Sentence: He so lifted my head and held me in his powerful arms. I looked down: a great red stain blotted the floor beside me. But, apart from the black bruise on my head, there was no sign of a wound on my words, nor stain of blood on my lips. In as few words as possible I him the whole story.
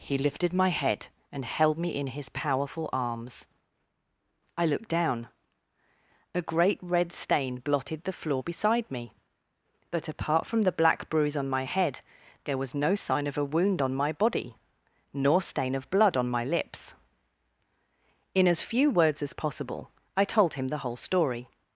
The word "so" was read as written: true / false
false